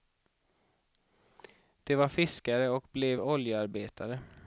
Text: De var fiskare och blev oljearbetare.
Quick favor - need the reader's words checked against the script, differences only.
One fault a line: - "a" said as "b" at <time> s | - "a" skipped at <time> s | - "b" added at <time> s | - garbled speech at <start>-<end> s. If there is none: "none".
none